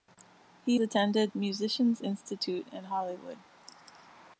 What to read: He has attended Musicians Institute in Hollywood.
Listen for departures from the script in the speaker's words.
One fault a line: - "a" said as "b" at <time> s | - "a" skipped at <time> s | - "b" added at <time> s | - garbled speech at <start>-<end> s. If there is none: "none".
- "has" skipped at 0.8 s